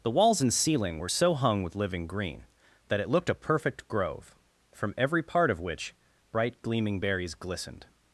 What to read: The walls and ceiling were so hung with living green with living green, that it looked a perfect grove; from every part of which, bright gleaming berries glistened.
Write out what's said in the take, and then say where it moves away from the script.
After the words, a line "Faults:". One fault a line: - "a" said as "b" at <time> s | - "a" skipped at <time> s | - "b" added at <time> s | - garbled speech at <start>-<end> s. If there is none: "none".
The walls and ceiling were so hung with living green, that it looked a perfect grove; from every part of which, bright gleaming berries glistened.
Faults:
- "with living green" skipped at 2.4 s